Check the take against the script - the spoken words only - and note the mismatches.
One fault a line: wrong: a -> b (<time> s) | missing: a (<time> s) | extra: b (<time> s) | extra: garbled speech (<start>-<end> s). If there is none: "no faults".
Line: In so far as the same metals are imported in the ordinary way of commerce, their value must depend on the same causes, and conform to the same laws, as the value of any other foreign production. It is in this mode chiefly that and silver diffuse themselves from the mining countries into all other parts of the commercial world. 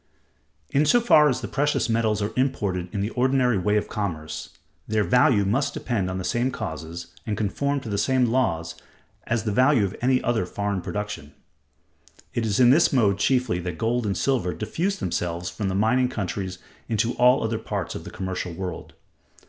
wrong: same -> precious (1.5 s)
extra: gold (13.8 s)